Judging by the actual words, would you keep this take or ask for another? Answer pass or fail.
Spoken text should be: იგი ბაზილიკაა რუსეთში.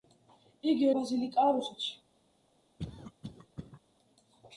pass